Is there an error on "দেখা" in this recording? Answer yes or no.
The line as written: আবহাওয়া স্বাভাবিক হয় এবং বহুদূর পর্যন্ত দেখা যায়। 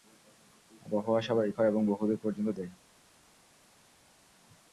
yes